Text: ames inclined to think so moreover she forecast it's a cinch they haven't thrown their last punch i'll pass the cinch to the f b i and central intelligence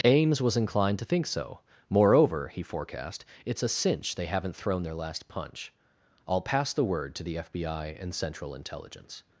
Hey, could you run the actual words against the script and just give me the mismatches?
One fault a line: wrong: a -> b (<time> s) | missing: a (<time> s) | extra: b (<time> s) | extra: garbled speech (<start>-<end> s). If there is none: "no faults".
extra: was (0.4 s)
wrong: she -> he (2.5 s)
wrong: cinch -> word (6.8 s)